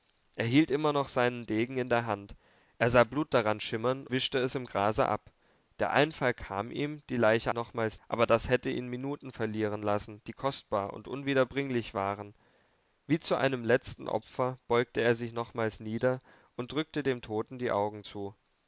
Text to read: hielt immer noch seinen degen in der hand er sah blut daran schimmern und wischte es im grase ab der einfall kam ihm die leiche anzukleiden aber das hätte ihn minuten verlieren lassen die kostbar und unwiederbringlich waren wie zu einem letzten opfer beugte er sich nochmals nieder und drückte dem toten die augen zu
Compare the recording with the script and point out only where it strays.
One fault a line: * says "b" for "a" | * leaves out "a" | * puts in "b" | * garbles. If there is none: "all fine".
* leaves out "und"
* says "nochmals" for "anzukleiden"